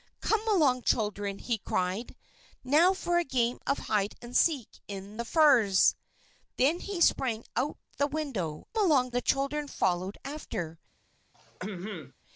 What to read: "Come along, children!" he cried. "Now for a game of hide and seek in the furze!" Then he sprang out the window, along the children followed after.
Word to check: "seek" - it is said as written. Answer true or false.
true